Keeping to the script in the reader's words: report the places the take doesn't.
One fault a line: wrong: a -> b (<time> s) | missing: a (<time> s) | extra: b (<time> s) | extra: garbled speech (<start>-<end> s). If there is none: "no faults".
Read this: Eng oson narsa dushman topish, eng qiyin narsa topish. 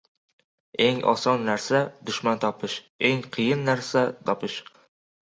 no faults